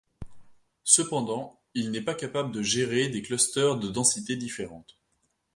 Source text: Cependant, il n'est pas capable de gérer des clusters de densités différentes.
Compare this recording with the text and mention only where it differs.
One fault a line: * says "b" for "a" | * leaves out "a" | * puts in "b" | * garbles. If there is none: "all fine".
all fine